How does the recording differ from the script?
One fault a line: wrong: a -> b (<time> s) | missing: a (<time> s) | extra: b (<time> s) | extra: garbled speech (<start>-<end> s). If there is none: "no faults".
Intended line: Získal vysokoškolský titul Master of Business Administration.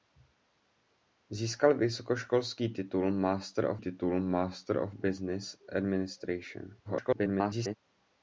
extra: titul Master of (3.8 s)
extra: garbled speech (6.8-7.8 s)